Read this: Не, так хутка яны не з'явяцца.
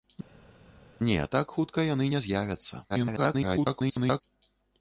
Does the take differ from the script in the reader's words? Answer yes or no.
yes